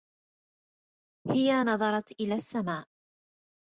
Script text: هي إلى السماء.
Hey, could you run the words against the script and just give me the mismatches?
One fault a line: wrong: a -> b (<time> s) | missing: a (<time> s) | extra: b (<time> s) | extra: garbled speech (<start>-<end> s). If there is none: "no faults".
extra: نظرت (1.6 s)